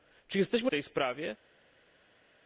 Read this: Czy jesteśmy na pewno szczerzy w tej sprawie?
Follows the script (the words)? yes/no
no